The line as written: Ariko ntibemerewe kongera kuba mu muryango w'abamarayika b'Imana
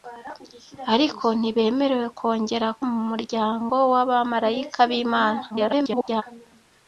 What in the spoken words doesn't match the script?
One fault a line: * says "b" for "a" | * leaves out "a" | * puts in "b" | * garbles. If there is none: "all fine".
* leaves out "kuba"
* garbles